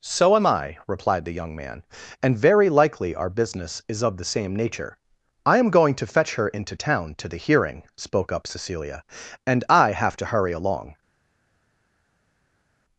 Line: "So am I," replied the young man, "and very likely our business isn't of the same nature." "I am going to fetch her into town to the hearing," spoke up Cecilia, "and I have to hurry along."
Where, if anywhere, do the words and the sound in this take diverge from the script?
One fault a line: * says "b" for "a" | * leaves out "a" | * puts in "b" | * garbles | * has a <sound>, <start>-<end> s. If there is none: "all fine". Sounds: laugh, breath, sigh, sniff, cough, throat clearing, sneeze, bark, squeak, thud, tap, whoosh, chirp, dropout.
* says "is" for "isn't"